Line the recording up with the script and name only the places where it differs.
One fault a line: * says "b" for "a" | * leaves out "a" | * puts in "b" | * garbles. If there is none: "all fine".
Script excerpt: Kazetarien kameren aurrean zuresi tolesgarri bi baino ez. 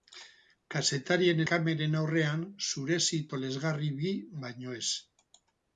all fine